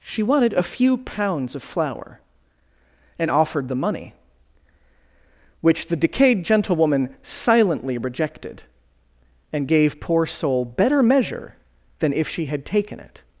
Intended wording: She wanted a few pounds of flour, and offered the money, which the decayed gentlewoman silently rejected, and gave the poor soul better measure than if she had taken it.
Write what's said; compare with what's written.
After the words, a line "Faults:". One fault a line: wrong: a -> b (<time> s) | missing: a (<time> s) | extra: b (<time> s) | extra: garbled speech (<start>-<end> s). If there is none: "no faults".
She wanted a few pounds of flour, and offered the money, which the decayed gentlewoman silently rejected, and gave poor soul better measure than if she had taken it.
Faults:
missing: the (10.0 s)